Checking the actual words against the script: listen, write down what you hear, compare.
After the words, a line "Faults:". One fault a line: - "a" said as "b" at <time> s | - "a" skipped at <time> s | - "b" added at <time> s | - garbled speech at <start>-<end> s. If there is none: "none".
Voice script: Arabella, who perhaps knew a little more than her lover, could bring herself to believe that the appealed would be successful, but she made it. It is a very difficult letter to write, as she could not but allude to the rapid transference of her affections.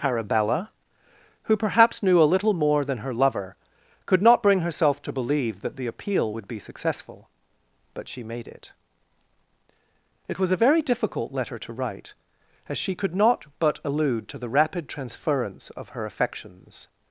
Arabella, who perhaps knew a little more than her lover, could not bring herself to believe that the appeal would be successful, but she made it. It was a very difficult letter to write, as she could not but allude to the rapid transference of her affections.
Faults:
- "not" added at 4.2 s
- "appealed" said as "appeal" at 5.9 s
- "is" said as "was" at 10.4 s